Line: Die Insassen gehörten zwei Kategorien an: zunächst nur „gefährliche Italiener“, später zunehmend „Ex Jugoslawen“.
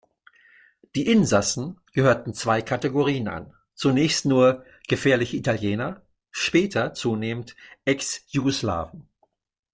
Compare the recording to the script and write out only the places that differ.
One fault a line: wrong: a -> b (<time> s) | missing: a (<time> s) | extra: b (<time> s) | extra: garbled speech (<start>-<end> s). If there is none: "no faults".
no faults